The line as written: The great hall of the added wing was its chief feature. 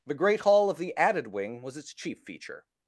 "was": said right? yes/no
yes